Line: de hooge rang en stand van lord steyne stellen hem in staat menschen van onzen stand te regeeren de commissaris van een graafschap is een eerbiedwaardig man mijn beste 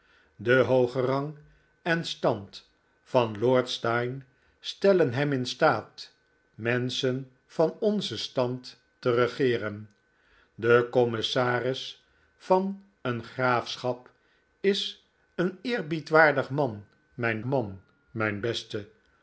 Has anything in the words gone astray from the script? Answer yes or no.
yes